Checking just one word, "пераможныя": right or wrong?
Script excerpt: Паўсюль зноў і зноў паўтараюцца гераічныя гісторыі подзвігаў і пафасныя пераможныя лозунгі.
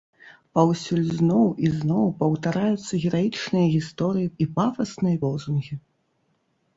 wrong